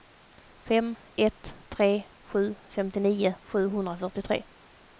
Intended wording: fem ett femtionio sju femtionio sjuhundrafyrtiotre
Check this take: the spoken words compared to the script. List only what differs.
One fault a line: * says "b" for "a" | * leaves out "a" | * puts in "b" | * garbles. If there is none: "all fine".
* says "tre" for "femtionio"